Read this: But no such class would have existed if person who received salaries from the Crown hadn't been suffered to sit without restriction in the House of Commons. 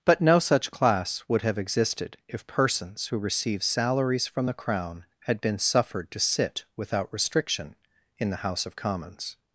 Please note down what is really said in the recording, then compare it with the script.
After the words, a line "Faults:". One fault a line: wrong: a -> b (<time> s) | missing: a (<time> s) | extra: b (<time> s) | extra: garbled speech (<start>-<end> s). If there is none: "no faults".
But no such class would have existed if persons who received salaries from the Crown had been suffered to sit without restriction in the House of Commons.
Faults:
wrong: person -> persons (2.5 s)
wrong: hadn't -> had (5.2 s)